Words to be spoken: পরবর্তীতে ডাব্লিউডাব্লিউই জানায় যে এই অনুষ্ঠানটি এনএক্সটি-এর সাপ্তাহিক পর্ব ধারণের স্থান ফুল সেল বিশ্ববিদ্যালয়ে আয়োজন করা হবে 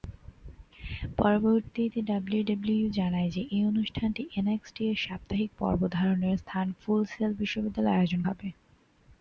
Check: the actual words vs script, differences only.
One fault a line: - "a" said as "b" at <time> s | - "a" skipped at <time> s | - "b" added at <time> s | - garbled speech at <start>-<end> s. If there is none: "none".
- "করা" skipped at 8.2 s